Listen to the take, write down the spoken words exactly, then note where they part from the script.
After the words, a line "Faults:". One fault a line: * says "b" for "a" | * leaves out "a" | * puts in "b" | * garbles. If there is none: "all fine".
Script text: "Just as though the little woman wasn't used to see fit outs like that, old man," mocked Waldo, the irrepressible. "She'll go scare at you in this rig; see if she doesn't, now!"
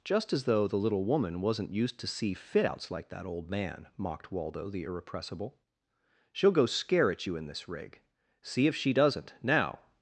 "Just as though the little woman wasn't used to see fit outs like that, old man," mocked Waldo, the irrepressible. "She'll go scare at you in this rig; see if she doesn't, now!"
Faults:
all fine